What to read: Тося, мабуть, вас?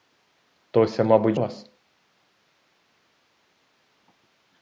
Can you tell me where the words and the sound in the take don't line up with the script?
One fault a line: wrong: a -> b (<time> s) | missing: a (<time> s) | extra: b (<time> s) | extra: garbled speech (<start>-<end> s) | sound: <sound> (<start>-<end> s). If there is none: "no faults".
no faults